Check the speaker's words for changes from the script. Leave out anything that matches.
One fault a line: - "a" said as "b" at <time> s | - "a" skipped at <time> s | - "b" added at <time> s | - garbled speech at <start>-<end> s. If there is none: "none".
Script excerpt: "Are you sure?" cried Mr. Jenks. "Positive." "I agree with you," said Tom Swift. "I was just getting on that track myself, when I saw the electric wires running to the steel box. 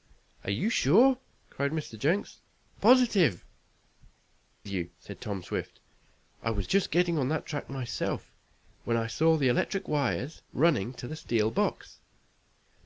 - "I agree with" skipped at 3.5 s